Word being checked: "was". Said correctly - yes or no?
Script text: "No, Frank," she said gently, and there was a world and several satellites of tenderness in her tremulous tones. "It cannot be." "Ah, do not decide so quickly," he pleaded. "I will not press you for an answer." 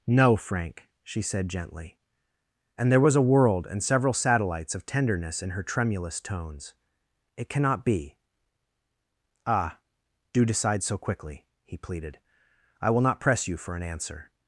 yes